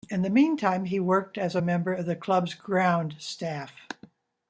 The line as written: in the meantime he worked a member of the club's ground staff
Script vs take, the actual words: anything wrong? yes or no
yes